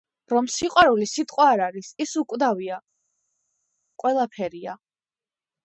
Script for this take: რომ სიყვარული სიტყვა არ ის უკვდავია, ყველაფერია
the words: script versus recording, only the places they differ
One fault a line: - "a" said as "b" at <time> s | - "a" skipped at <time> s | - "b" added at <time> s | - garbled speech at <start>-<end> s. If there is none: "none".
- "არის" added at 1.6 s